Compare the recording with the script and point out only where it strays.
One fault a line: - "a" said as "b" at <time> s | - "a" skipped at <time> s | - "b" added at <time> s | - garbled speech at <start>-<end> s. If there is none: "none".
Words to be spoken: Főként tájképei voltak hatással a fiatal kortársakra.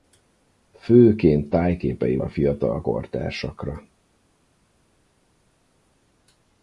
- "voltak hatással" skipped at 2.2 s